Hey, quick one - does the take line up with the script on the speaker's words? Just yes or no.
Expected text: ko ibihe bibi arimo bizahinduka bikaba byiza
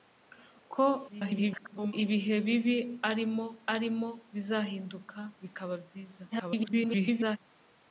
no